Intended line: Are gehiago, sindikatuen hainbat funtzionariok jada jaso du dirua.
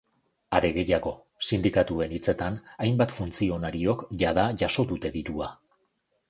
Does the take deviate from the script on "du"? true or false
true